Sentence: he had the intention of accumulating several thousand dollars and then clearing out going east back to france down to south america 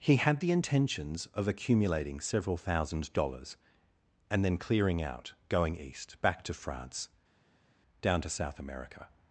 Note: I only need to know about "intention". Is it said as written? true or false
false